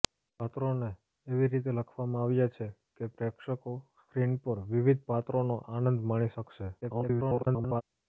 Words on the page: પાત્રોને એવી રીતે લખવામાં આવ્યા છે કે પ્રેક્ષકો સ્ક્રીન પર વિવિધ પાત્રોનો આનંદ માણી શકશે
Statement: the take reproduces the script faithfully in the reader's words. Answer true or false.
false